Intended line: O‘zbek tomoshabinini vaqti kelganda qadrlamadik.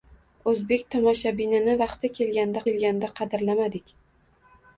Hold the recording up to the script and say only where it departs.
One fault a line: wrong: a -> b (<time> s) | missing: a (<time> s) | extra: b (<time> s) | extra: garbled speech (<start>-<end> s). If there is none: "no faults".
extra: kelganda (2.7 s)